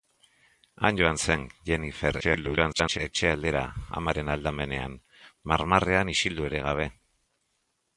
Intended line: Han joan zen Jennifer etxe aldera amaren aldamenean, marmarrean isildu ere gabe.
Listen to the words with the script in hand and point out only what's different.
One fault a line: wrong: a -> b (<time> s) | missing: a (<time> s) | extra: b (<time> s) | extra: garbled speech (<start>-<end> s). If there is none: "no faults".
extra: garbled speech (2.2-3.0 s)